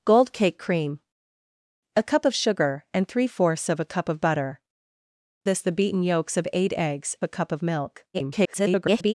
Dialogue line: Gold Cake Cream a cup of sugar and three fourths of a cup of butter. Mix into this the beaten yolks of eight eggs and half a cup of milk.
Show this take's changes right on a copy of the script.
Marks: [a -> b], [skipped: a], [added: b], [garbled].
Gold Cake Cream a cup of sugar and three fourths of a cup of butter. [skipped: Mix into] this the beaten yolks of eight eggs [skipped: and half] a cup of milk. [garbled]